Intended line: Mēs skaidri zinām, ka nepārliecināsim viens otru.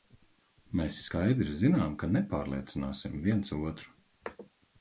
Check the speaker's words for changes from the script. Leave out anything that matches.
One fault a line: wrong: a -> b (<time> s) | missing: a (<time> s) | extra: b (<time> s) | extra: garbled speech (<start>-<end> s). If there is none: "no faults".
no faults